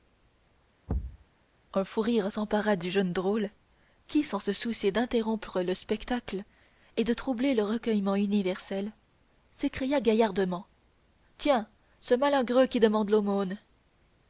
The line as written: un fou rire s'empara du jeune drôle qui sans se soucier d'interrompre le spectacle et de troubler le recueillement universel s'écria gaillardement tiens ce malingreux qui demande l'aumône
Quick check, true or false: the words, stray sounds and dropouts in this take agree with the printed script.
false